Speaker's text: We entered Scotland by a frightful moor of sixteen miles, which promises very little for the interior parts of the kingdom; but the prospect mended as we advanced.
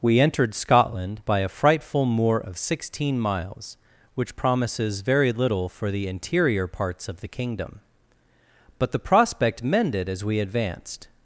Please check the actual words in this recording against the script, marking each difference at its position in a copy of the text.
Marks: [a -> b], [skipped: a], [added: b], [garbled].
We entered Scotland by a frightful moor of sixteen miles, which promises very little for the interior parts of the kingdom; but the prospect mended as we advanced.